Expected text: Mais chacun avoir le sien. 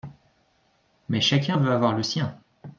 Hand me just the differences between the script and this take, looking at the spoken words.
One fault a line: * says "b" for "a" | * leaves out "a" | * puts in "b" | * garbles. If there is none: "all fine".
* puts in "veut"